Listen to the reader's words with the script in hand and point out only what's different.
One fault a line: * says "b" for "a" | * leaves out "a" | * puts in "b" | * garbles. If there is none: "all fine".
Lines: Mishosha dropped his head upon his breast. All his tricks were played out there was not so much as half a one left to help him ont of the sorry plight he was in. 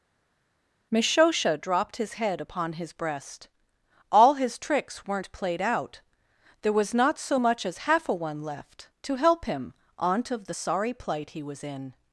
* says "weren't" for "were"